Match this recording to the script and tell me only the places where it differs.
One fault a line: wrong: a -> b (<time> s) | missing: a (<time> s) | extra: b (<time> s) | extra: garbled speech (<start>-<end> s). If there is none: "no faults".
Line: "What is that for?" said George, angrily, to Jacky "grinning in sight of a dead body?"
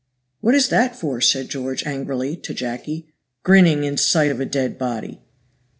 no faults